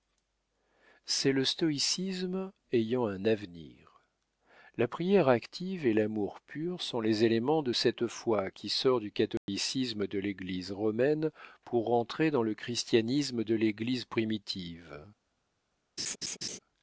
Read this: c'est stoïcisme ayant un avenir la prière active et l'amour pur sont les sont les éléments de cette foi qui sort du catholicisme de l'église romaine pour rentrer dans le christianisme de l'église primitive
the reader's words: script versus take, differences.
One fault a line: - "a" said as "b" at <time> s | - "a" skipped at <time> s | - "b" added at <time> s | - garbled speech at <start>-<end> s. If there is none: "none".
- "le" added at 1.3 s
- "sont les" skipped at 7.2 s